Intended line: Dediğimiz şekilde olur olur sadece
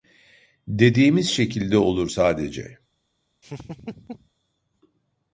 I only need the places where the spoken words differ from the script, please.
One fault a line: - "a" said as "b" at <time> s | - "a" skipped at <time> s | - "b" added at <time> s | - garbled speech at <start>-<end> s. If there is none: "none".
- "olur" skipped at 2.1 s